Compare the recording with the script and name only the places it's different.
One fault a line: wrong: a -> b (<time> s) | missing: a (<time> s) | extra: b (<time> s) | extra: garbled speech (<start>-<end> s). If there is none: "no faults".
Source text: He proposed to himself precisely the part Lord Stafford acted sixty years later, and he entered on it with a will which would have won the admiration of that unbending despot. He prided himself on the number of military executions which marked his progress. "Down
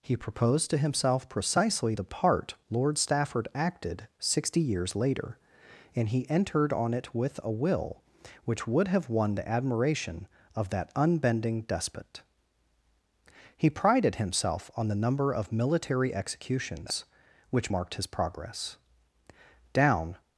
no faults